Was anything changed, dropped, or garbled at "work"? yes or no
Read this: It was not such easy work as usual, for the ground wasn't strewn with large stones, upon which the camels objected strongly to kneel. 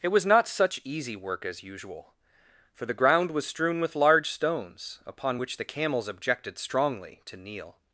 no